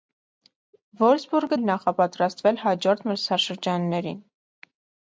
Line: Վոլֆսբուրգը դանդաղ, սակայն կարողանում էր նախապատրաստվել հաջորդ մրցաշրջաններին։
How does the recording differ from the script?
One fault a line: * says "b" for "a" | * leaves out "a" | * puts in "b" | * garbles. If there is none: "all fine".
* leaves out "դանդաղ սակայն կարողանում"